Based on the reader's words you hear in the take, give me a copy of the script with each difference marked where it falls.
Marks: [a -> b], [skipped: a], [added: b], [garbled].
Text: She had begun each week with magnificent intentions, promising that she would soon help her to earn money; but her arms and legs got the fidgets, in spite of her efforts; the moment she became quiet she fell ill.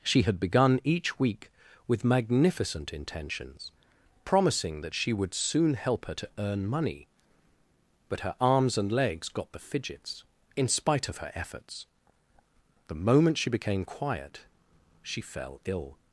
She had begun each week with magnificent intentions, promising that she would soon help her to earn money; but her arms and legs got the fidgets, in spite of her efforts; the moment she became quiet she fell ill.